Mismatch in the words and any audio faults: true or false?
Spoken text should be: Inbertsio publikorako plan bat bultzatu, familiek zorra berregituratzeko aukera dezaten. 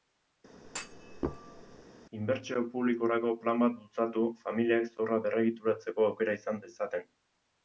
true